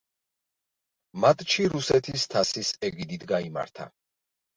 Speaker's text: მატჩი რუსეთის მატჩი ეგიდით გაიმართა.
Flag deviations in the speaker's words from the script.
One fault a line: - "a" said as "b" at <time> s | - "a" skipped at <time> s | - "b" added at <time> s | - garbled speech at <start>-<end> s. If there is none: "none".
- "მატჩი" said as "თასის" at 2.4 s